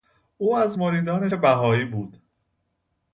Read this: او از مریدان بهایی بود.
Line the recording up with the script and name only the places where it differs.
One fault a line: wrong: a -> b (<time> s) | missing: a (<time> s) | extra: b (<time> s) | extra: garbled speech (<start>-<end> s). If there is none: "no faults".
no faults